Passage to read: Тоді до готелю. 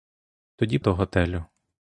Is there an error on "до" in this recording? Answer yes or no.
no